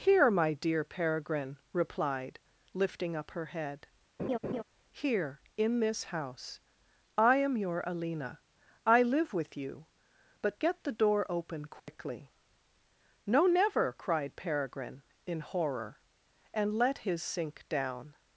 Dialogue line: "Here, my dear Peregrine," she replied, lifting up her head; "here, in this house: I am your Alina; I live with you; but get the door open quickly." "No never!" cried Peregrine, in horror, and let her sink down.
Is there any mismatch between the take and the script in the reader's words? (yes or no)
yes